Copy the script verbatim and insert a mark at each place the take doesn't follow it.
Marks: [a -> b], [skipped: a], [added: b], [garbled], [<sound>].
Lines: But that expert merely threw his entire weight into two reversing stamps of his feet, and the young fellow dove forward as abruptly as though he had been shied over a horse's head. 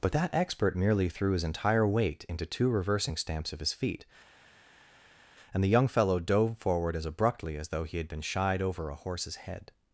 But that expert merely threw his entire weight into two reversing stamps of his feet, and the young fellow dove forward as abruptly as though he had been shied over a horse's head.